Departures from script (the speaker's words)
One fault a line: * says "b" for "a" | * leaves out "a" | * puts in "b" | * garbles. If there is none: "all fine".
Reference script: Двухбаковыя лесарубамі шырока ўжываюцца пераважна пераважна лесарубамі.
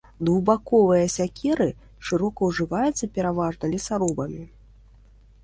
* says "сякеры" for "лесарубамі"
* leaves out "пераважна"